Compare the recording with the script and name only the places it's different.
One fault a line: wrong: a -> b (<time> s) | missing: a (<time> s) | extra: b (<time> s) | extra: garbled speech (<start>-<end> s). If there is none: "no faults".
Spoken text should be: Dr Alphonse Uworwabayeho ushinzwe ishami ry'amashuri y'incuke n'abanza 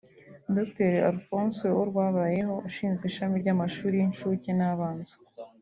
no faults